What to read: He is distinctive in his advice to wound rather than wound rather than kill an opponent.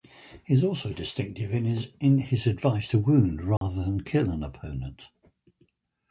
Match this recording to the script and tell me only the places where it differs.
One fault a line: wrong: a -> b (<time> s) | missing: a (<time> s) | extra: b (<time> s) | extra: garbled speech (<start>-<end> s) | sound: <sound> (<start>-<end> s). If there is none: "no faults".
extra: also (0.6 s)
sound: dropout (3.6-3.6 s)
missing: wound rather than (4.0 s)